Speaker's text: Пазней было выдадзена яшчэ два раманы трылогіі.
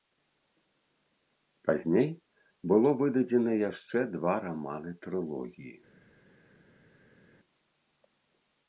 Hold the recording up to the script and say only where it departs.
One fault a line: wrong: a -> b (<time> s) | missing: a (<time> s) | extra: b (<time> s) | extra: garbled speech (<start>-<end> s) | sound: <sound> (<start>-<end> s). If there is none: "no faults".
no faults